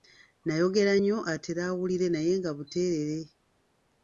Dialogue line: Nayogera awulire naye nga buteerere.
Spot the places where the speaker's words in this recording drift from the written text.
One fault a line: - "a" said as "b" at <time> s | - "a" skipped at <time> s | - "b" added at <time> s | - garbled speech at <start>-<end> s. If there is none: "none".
- "nnyo atere" added at 1.0 s